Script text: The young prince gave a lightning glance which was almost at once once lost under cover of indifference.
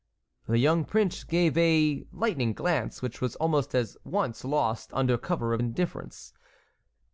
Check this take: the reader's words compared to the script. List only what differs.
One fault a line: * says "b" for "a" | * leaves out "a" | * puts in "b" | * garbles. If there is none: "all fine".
* leaves out "once"